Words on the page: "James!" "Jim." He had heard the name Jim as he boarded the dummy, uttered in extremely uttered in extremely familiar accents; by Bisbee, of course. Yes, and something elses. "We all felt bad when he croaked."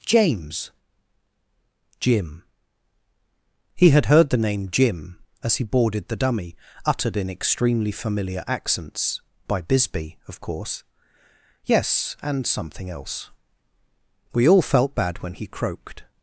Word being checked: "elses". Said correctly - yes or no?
no